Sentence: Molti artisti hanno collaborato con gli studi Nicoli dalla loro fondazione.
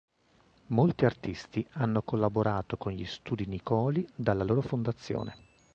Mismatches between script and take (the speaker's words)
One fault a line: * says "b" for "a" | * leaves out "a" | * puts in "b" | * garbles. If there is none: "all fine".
all fine